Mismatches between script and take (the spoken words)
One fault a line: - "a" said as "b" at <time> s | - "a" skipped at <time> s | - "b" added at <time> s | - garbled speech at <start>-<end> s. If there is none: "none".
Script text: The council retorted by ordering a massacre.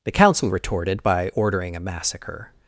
none